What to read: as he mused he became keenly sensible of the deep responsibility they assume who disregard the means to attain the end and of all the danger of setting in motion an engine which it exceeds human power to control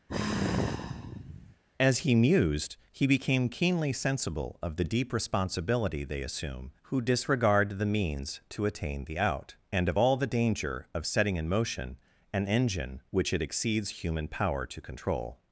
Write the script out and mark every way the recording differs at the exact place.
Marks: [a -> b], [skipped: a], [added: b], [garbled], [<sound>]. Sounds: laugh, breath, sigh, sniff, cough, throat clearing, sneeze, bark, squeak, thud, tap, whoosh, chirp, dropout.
[sigh] as he mused he became keenly sensible of the deep responsibility they assume who disregard the means to attain the [end -> out] and of all the danger of setting in motion an engine which it exceeds human power to control